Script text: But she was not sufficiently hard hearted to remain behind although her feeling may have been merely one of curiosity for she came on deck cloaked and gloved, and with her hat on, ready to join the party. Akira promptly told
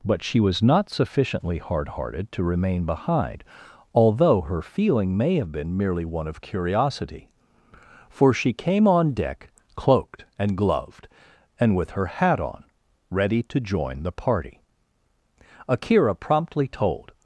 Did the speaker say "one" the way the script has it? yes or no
yes